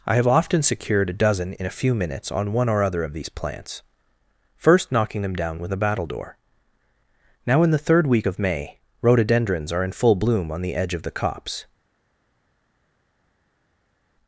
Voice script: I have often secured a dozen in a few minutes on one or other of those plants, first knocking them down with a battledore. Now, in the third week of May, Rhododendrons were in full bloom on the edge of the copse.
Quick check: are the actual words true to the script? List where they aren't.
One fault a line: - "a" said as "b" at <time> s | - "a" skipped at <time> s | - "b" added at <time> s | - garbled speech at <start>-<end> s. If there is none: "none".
- "those" said as "these" at 3.1 s
- "were" said as "are" at 9.7 s